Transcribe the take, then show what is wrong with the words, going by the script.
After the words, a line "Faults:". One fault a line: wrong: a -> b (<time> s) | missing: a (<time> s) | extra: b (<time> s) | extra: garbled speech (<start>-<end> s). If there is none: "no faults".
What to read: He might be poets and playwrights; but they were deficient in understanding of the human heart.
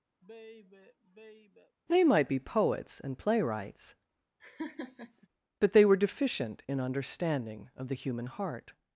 They might be poets and playwrights; but they were deficient in understanding of the human heart.
Faults:
wrong: He -> They (1.9 s)